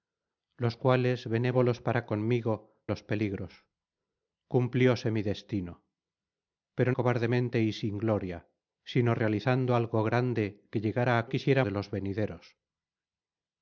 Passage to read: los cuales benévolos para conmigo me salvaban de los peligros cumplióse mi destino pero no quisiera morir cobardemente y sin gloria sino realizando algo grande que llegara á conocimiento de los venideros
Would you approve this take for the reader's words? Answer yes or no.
no